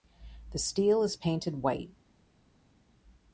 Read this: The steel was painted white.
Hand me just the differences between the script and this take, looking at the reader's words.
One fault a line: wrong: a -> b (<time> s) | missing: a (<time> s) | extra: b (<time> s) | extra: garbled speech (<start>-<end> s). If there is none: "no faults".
wrong: was -> is (1.0 s)